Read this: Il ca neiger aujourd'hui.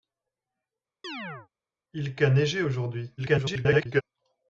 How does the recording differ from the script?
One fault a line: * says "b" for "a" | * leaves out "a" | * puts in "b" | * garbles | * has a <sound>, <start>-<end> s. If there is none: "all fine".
* has a chirp, 1.0-1.5 s
* garbles